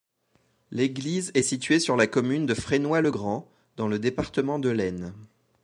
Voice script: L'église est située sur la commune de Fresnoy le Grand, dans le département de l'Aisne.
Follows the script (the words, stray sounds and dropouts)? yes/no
yes